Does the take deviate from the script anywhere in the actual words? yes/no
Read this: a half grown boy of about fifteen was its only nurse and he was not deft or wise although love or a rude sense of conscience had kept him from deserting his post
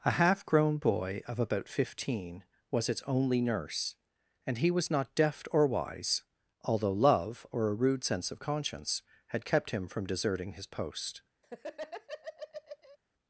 no